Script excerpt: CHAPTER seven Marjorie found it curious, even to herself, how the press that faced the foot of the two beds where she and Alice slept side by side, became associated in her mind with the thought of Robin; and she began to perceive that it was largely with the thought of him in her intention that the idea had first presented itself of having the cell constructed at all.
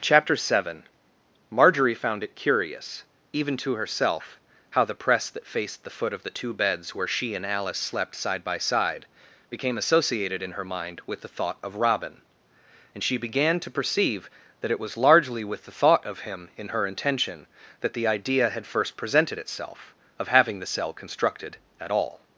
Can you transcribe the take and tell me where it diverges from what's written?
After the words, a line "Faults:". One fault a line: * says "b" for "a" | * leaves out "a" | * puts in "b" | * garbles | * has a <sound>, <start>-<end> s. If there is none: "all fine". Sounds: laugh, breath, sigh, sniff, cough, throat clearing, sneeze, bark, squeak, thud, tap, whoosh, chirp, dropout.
CHAPTER seven Marjorie found it curious, even to herself, how the press that faced the foot of the two beds where she and Alice slept side by side, became associated in her mind with the thought of Robin; and she began to perceive that it was largely with the thought of him in her intention that the idea had first presented itself of having the cell constructed at all.
Faults:
all fine